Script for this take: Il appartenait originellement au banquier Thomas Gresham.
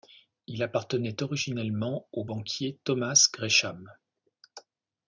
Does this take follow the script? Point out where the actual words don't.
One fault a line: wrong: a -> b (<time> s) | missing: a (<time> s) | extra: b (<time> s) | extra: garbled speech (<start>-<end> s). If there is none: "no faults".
no faults